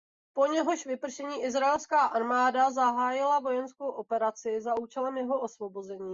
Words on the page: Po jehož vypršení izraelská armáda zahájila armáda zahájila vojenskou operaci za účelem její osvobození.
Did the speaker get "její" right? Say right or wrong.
wrong